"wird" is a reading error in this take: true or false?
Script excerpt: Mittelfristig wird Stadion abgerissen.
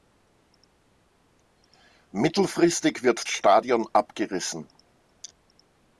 false